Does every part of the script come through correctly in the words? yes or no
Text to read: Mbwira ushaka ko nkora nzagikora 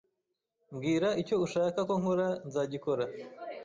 no